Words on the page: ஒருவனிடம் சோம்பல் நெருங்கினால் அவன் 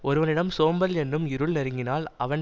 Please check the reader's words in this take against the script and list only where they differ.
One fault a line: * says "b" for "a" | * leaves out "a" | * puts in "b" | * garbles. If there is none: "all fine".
* puts in "என்னும் இருள்"